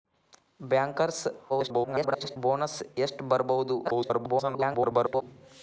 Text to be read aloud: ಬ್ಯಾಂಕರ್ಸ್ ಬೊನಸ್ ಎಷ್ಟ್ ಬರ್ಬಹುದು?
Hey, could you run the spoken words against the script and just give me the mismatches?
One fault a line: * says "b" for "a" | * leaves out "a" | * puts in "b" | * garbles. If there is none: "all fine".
* garbles
* garbles